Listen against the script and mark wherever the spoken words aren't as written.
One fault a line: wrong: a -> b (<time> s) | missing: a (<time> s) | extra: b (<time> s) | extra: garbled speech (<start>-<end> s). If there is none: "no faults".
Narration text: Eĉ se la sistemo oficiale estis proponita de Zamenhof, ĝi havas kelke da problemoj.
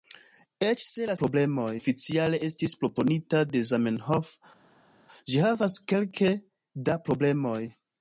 wrong: sistemo -> problemoj (1.2 s)